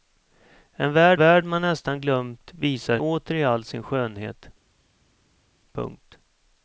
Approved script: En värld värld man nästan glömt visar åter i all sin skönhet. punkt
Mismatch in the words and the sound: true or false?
false